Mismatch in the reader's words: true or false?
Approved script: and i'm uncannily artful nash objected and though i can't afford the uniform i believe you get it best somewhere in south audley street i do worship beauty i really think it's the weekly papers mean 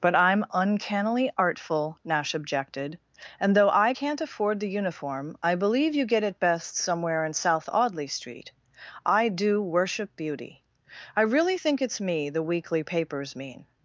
true